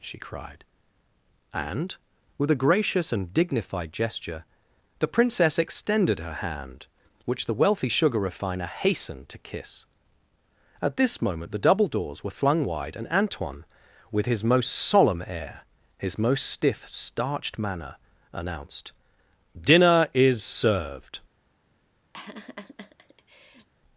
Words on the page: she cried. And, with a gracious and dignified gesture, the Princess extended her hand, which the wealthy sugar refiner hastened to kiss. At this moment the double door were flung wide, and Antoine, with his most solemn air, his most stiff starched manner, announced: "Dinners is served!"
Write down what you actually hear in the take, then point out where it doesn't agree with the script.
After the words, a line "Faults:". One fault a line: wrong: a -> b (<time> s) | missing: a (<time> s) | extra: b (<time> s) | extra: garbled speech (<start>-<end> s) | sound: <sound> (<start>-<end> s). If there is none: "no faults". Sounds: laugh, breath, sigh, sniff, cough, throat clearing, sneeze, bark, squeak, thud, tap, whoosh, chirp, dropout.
she cried. And, with a gracious and dignified gesture, the Princess extended her hand, which the wealthy sugar refiner hastened to kiss. At this moment the double doors were flung wide, and Antoine, with his most solemn air, his most stiff starched manner, announced: "Dinner is served!"
Faults:
wrong: door -> doors (11.9 s)
wrong: Dinners -> Dinner (19.6 s)
sound: laugh (22.1-23.7 s)